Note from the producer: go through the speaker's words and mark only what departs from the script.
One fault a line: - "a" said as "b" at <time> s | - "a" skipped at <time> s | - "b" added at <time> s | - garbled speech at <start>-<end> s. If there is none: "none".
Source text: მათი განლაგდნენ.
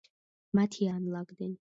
none